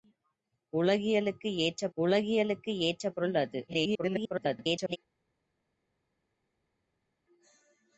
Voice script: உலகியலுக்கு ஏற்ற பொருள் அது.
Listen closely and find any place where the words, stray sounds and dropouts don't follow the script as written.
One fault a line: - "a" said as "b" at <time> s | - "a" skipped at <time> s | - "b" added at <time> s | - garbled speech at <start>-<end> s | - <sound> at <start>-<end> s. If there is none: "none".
- "உலகியலுக்கு ஏற்ற" added at 2.0 s
- garbled speech at 3.7-5.0 s